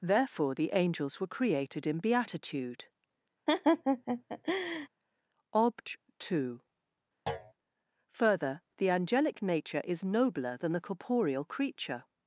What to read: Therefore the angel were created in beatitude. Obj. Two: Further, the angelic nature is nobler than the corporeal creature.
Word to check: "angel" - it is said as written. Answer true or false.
false